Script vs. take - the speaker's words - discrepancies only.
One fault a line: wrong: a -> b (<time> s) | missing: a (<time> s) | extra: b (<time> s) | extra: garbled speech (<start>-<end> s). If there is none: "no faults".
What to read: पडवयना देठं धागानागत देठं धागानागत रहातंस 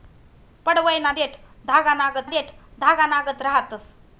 no faults